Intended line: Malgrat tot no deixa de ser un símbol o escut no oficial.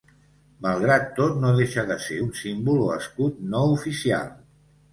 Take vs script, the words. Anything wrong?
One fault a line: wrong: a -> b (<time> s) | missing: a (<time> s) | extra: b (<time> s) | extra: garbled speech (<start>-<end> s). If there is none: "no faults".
no faults